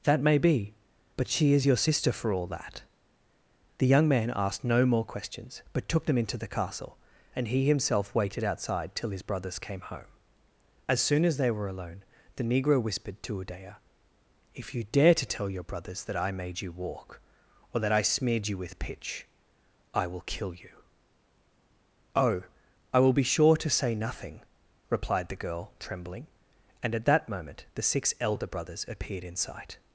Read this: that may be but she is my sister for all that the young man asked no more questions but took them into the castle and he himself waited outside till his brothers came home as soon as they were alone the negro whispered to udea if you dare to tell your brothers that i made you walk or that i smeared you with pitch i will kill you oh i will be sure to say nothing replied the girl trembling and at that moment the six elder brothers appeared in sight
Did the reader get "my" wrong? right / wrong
wrong